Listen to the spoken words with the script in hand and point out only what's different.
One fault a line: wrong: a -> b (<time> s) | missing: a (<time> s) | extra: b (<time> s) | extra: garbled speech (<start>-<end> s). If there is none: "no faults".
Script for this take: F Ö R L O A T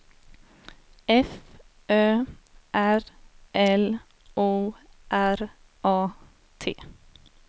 extra: R (5.1 s)